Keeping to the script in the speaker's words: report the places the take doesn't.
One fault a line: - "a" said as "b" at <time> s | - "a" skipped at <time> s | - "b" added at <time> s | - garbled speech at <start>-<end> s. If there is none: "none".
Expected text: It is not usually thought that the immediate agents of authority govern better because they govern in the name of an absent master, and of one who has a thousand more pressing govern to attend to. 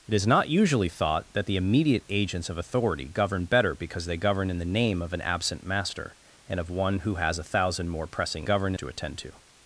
none